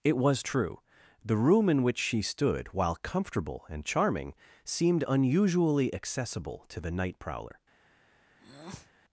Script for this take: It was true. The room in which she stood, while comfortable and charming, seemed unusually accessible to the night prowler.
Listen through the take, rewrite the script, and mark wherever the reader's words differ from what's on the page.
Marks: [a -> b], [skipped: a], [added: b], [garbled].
It was true. The room in which she stood, while comfortable and charming, seemed unusually accessible to the night prowler.